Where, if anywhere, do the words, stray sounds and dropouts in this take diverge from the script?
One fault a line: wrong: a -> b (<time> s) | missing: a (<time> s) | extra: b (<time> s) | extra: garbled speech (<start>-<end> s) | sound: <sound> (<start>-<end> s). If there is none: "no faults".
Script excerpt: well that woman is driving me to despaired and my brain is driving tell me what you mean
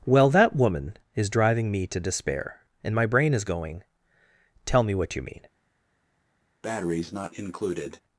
wrong: despaired -> despair (2.0 s)
wrong: driving -> going (3.4 s)
sound: breath (6.6-8.0 s)